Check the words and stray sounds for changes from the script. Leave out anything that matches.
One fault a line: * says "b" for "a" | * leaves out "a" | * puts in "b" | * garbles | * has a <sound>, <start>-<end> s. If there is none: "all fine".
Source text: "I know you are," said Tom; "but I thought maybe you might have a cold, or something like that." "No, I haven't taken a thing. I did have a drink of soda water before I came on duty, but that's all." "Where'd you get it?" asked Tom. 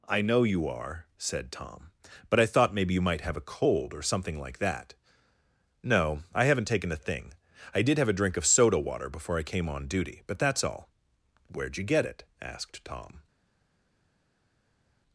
all fine